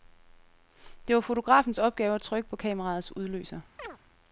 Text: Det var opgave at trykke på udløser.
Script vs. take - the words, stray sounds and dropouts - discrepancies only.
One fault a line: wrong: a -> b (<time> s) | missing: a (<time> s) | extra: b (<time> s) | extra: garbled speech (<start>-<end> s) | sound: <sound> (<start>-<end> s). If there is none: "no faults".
extra: fotografens (1.2 s)
extra: kameraets (2.6 s)
sound: chirp (3.8-4.0 s)